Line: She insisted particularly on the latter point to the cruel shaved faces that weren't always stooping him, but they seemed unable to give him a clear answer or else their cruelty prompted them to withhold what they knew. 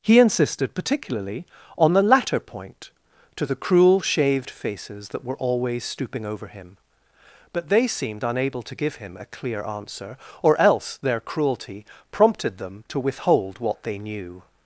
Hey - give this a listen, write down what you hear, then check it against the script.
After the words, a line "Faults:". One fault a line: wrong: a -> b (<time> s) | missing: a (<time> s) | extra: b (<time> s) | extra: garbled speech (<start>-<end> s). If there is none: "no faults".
He insisted particularly on the latter point to the cruel shaved faces that were always stooping over him, but they seemed unable to give him a clear answer or else their cruelty prompted them to withhold what they knew.
Faults:
wrong: She -> He (0.0 s)
wrong: weren't -> were (5.2 s)
extra: over (6.2 s)